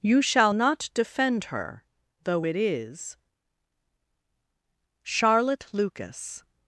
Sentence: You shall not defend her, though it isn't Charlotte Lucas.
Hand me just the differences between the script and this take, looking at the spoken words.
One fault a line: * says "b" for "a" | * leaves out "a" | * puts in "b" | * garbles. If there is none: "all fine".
* says "is" for "isn't"